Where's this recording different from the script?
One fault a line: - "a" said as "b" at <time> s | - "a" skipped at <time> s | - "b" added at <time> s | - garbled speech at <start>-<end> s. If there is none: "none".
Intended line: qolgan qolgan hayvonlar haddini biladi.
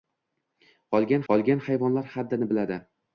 none